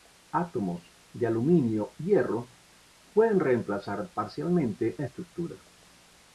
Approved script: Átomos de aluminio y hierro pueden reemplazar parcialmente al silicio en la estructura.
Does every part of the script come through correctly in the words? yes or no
no